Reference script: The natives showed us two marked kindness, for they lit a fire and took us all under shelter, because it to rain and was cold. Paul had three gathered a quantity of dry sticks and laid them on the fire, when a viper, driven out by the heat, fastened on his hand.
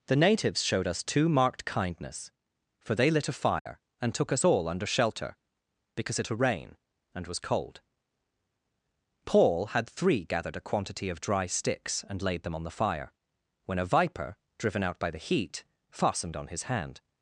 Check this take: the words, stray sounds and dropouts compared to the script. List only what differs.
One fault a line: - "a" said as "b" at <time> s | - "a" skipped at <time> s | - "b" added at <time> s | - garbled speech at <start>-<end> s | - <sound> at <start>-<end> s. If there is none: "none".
- dropout at 3.6-3.7 s